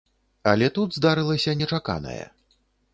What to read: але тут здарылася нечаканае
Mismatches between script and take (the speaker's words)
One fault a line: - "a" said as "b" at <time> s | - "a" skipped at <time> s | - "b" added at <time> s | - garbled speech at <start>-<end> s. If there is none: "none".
none